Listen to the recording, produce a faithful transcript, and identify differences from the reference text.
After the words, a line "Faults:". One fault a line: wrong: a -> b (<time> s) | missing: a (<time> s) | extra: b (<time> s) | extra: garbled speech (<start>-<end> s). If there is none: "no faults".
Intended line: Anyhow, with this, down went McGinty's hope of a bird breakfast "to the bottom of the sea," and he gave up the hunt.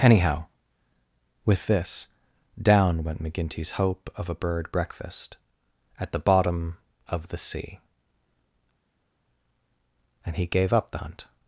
Anyhow, with this, down went McGinty's hope of a bird breakfast "at the bottom of the sea," and he gave up the hunt.
Faults:
wrong: to -> at (6.0 s)